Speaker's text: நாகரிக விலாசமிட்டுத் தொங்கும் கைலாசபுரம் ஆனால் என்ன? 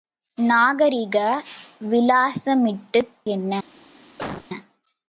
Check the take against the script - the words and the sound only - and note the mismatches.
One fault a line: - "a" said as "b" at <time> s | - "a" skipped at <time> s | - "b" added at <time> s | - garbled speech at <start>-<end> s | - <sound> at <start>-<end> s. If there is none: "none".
- "தொங்கும் கைலாசபுரம் ஆனால்" skipped at 3.1 s
- cough at 4.2-4.5 s